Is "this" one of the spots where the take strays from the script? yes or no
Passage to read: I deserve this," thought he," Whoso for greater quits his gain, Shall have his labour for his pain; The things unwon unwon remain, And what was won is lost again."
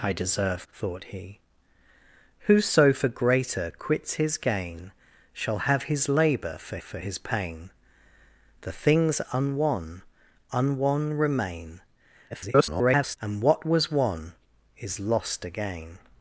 yes